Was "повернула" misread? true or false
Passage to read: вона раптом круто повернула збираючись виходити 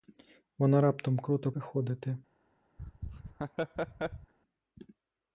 true